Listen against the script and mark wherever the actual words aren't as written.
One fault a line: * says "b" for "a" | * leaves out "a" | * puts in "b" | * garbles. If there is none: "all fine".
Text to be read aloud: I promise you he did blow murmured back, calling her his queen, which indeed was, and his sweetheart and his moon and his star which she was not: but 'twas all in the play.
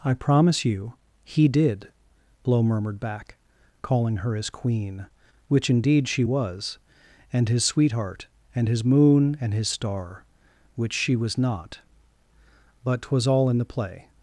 * puts in "she"